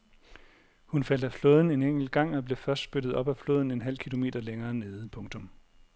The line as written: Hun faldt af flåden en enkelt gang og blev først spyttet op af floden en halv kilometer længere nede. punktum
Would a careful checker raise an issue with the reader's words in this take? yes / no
no